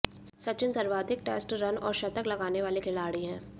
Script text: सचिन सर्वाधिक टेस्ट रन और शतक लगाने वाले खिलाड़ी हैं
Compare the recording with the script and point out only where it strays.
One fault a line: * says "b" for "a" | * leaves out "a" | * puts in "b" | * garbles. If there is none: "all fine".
all fine